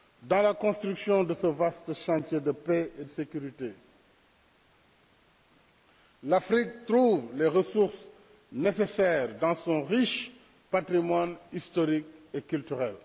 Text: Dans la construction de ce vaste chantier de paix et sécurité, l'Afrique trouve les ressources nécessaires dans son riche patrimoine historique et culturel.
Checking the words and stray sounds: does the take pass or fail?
pass